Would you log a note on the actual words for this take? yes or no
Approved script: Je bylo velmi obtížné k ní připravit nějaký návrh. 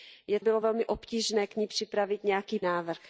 no